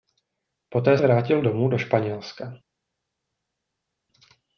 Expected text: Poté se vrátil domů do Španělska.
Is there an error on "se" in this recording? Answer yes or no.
yes